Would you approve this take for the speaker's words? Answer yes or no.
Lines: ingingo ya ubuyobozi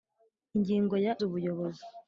yes